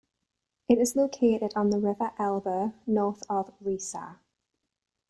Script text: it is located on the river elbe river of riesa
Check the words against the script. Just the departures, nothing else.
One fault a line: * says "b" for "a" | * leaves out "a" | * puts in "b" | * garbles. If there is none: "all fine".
* says "north" for "river"